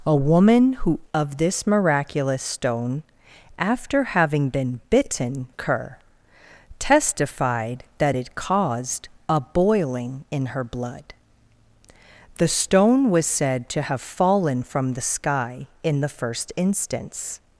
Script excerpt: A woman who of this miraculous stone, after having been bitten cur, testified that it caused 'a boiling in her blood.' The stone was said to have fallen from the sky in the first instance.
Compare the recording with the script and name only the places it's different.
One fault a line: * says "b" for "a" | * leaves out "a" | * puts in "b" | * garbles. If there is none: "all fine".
all fine